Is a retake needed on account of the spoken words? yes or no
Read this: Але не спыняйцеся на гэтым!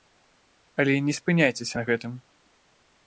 no